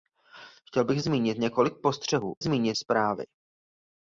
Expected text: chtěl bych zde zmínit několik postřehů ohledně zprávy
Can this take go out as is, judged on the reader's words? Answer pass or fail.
fail